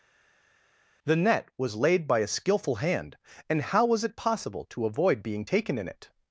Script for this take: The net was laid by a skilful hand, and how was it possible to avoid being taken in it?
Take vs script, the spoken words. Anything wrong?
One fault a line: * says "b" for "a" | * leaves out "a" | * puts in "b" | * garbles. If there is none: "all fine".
all fine